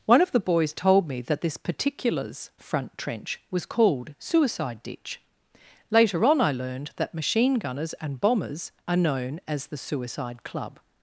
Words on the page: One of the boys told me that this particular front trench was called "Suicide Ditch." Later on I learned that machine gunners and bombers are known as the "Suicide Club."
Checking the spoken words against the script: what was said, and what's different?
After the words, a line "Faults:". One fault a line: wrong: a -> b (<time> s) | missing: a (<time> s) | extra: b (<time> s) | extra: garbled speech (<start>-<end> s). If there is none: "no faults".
One of the boys told me that this particulars front trench was called "Suicide Ditch." Later on I learned that machine gunners and bombers are known as the "Suicide Club."
Faults:
wrong: particular -> particulars (1.6 s)